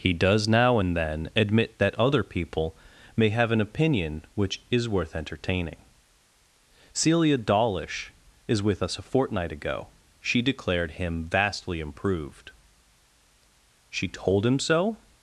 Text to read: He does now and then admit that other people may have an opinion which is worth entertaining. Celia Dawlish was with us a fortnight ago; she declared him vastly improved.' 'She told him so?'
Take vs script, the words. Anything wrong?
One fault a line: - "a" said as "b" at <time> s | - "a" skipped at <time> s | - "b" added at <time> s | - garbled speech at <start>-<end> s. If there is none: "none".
- "was" said as "is" at 8.5 s